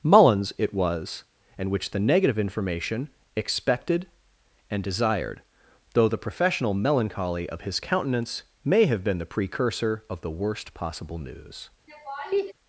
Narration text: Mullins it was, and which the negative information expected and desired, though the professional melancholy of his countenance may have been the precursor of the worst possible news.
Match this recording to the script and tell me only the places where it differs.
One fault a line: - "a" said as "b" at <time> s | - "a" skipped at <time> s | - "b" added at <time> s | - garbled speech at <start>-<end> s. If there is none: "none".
none